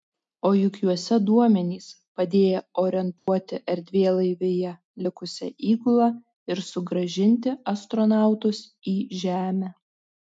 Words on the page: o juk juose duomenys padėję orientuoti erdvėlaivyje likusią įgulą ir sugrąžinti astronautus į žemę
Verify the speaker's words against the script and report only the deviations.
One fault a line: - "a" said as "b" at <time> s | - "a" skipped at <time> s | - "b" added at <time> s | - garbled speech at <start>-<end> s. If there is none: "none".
none